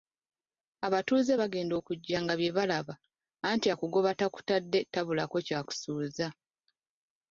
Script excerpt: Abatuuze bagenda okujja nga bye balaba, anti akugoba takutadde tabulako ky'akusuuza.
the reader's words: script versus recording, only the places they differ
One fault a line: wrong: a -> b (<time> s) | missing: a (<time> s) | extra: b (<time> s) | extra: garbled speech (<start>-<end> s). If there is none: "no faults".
no faults